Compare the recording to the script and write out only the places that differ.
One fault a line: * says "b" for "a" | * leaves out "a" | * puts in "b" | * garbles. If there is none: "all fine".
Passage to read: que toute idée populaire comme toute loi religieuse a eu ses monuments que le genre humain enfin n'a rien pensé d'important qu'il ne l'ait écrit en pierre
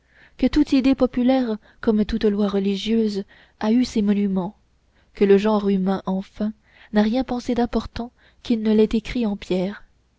all fine